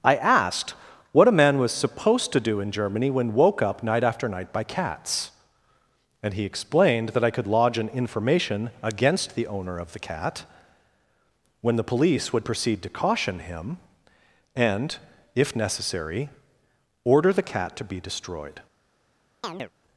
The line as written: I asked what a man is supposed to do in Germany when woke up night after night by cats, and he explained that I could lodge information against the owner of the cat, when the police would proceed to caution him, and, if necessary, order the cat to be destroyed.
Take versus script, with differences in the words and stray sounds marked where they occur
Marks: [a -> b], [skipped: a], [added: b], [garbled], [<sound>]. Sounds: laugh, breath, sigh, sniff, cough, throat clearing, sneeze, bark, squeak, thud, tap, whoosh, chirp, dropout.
I asked what a man [is -> was] supposed to do in Germany when woke up night after night by cats, and he explained that I could lodge [added: an] information against the owner of the cat, when the police would proceed to caution him, and, if necessary, order the cat to be destroyed. [chirp]